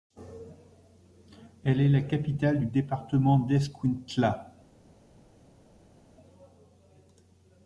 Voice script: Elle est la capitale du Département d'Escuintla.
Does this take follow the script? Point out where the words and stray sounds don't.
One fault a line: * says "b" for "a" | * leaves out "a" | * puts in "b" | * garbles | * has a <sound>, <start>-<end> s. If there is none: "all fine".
all fine